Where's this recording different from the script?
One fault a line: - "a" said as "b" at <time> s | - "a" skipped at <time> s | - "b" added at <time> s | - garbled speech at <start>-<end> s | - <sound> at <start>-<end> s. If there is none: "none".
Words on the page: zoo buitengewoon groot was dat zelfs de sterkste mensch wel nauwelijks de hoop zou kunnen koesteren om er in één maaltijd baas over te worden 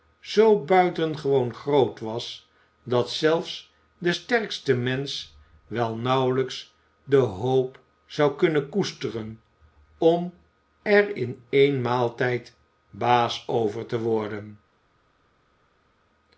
none